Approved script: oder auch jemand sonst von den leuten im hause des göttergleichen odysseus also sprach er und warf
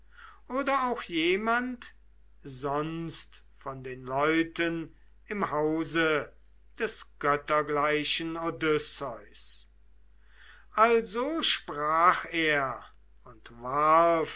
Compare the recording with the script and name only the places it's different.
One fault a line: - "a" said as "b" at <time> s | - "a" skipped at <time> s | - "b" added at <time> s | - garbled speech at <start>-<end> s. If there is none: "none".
none